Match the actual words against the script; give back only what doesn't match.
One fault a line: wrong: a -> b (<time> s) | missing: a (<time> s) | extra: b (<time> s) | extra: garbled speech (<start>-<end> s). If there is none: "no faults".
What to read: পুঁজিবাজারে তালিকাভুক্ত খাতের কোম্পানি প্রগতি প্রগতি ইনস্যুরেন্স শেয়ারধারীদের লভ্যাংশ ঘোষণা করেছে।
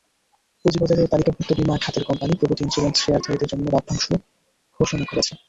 extra: বিমা (1.6 s)
missing: প্রগতি (2.6 s)
extra: জন্য (3.5 s)